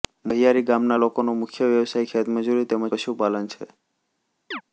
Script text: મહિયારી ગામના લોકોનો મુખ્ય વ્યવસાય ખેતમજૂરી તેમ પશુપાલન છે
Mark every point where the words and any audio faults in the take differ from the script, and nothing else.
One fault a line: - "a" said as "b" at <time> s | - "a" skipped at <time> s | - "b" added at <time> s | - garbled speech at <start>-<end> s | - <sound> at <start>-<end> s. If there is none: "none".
- chirp at 4.5-4.6 s